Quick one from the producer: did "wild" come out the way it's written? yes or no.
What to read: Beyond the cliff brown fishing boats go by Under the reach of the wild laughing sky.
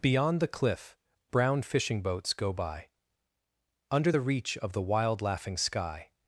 yes